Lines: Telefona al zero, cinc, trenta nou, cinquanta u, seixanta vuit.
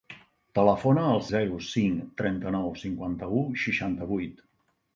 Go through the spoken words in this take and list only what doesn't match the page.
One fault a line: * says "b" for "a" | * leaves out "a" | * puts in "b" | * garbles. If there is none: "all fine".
all fine